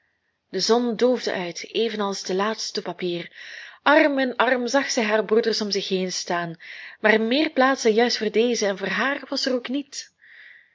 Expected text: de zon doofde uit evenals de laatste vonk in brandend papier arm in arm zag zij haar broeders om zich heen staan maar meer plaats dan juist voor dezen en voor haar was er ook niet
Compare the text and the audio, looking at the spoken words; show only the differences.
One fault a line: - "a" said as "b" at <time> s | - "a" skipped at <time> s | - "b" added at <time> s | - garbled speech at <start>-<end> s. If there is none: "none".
- "vonk in brandend" skipped at 2.8 s